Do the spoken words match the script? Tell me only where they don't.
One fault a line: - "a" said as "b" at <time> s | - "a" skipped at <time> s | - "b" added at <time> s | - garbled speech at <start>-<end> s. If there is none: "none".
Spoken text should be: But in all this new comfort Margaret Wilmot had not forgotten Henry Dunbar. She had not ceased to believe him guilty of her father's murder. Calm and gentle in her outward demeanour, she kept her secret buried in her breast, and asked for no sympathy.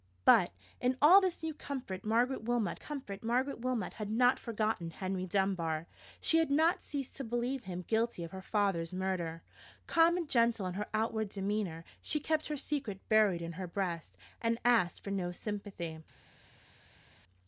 - "comfort Margaret Wilmot" added at 2.7 s